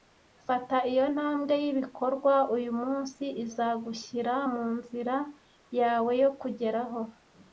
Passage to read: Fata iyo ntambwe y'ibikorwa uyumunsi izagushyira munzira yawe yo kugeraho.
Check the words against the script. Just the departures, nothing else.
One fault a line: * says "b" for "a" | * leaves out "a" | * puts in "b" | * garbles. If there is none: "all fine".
all fine